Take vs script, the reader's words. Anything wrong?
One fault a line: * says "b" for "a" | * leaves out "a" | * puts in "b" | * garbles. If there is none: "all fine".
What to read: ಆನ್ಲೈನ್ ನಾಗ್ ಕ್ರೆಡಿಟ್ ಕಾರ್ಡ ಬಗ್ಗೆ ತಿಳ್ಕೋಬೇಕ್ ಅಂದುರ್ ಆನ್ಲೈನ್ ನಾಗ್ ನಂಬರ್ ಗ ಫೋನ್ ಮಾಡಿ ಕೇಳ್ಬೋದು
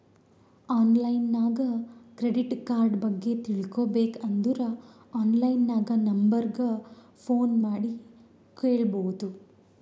all fine